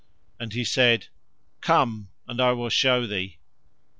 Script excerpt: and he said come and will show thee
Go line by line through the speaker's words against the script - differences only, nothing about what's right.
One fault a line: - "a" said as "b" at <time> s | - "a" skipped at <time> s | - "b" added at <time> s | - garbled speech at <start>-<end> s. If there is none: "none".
- "i" added at 2.4 s